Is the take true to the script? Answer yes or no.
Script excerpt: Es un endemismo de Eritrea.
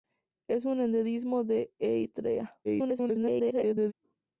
no